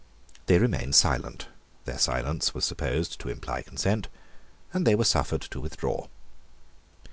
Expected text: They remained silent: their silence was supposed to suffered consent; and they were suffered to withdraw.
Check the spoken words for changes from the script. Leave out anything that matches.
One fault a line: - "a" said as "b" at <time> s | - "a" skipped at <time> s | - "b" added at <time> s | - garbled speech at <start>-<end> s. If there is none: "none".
- "suffered" said as "imply" at 3.3 s